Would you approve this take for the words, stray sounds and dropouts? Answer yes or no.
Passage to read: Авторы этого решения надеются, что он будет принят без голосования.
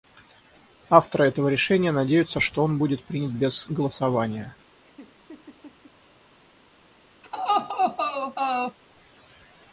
no